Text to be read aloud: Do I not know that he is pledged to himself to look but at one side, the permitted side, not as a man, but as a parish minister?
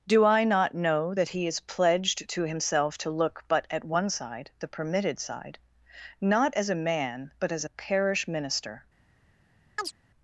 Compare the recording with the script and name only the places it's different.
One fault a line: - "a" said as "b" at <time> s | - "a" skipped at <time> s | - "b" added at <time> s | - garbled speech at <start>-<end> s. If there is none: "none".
none